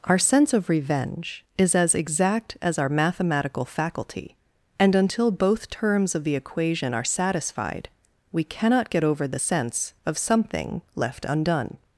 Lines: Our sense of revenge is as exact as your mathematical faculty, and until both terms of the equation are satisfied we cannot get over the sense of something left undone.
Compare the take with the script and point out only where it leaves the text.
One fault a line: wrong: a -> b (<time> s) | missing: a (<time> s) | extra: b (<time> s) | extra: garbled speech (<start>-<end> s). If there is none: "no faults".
wrong: your -> our (2.8 s)